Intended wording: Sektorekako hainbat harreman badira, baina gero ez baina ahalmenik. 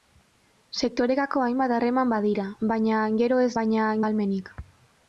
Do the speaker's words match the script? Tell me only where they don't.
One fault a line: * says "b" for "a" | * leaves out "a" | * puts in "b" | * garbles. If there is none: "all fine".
all fine